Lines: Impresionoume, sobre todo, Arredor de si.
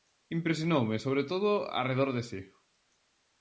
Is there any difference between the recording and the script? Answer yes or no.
no